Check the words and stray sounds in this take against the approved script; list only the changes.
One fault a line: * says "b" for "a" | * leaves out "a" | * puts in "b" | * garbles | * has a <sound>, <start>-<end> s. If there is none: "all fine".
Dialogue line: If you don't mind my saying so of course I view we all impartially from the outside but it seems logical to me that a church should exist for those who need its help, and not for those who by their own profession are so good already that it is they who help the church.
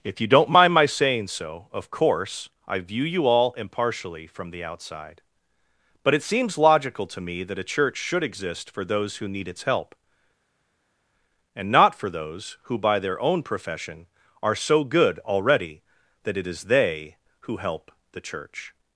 * says "you" for "we"